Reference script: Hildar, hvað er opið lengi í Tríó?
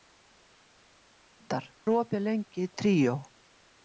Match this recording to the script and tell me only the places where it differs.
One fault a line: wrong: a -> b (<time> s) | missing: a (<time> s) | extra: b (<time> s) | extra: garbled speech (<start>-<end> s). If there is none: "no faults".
missing: hvað (1.7 s)